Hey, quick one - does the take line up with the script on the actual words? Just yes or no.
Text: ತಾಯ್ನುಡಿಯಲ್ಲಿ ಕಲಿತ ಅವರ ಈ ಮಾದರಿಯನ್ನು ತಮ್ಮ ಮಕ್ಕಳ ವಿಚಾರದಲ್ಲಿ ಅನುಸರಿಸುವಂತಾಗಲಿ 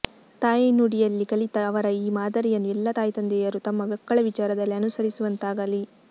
no